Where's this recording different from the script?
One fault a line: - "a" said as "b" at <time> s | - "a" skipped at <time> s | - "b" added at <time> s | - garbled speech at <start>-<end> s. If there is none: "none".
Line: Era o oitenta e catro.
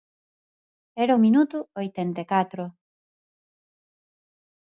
- "minuto" added at 1.3 s